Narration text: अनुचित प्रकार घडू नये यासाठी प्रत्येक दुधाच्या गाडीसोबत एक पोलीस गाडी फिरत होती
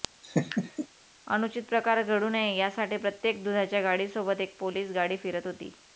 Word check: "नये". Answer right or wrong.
right